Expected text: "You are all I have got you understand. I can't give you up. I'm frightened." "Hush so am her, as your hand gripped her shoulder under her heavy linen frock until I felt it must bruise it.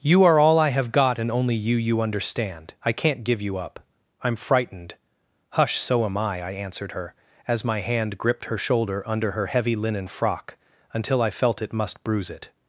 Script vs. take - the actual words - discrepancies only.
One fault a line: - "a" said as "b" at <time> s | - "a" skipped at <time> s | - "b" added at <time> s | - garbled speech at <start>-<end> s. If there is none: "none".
- "and only" added at 1.2 s
- "you" added at 1.8 s
- "I I answered" added at 6.2 s
- "your" said as "my" at 7.6 s